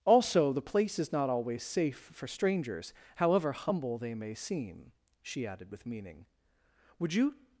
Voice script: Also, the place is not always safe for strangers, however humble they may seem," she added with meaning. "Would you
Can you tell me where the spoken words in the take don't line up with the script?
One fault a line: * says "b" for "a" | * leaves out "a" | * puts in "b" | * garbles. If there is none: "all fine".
all fine